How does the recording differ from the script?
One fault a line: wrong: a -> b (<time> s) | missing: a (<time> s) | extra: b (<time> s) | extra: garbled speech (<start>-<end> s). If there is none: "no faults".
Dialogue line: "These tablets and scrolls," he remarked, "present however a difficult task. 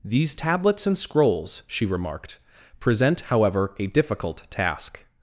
wrong: he -> she (1.7 s)